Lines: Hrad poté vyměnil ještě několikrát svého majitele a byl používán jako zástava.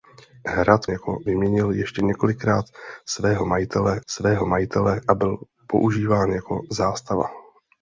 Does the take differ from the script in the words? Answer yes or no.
yes